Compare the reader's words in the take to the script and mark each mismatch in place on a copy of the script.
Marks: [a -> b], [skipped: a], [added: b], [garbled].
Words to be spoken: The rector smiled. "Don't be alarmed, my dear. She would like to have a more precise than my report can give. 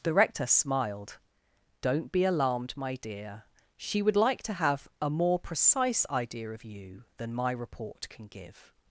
The rector smiled. "Don't be alarmed, my dear. She would like to have a more precise [added: idea of you] than my report can give.